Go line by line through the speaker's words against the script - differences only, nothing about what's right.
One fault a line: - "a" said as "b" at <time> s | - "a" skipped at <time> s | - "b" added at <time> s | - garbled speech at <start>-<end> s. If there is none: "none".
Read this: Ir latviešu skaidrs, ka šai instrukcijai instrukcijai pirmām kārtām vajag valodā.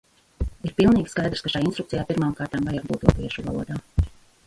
- "latviešu" said as "pilnīgi" at 0.8 s
- "instrukcijai" skipped at 2.1 s
- "būt latviešu" added at 2.9 s